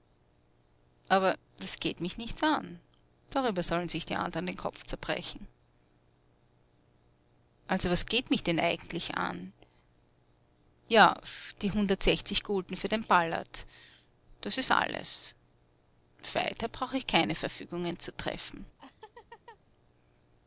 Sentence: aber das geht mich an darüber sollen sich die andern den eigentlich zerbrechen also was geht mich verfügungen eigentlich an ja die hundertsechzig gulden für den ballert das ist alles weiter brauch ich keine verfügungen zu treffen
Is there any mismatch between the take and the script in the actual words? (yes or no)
yes